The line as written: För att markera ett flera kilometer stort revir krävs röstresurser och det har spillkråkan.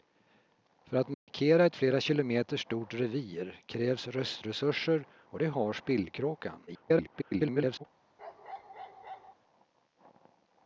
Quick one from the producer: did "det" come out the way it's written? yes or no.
yes